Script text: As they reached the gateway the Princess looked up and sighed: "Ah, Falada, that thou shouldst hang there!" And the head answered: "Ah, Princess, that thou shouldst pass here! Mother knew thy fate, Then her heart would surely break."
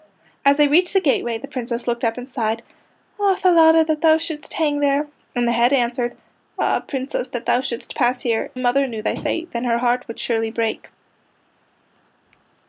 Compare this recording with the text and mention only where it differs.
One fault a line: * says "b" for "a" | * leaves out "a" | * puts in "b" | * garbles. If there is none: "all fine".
all fine